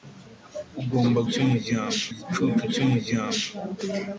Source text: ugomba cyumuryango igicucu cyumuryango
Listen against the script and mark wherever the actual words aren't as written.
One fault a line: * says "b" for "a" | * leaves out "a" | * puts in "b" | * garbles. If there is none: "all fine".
all fine